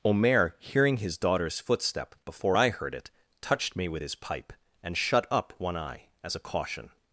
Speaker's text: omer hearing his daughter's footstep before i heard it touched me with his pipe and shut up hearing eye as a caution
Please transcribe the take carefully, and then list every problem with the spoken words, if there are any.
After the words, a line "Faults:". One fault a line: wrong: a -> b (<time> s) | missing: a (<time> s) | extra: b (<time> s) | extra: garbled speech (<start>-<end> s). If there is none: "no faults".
omer hearing his daughter's footstep before i heard it touched me with his pipe and shut up one eye as a caution
Faults:
wrong: hearing -> one (5.6 s)